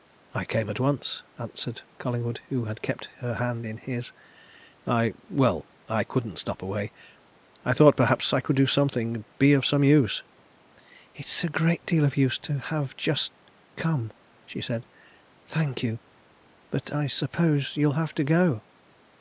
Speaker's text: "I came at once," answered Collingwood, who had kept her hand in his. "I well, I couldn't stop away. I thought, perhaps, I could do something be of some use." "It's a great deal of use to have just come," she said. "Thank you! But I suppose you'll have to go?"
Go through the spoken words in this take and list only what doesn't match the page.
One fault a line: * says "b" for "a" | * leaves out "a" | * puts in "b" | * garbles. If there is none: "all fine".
all fine